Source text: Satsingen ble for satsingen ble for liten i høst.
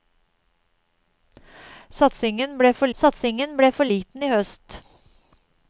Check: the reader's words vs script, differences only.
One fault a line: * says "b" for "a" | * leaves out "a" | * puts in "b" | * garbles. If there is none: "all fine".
all fine